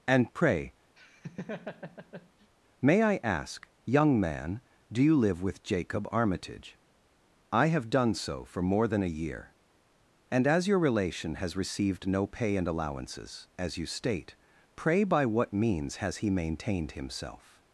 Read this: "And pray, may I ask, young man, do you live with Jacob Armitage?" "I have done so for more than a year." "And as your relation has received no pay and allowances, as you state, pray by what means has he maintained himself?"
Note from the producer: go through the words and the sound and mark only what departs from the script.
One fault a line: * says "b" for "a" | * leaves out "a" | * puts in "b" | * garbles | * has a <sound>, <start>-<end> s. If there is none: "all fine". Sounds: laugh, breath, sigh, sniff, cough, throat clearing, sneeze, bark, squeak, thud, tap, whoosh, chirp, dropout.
* has a laugh, 1.0-2.5 s